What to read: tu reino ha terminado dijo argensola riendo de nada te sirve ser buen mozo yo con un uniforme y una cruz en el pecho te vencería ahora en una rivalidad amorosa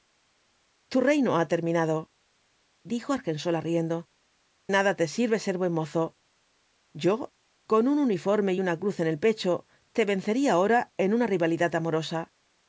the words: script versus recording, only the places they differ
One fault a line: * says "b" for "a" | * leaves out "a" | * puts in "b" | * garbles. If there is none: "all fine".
* leaves out "de"